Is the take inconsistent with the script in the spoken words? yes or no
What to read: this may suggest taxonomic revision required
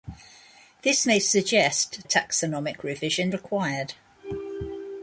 no